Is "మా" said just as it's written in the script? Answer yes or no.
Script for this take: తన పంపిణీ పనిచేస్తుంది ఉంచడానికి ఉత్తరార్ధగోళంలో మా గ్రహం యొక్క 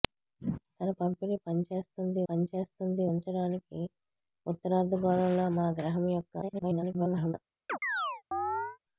yes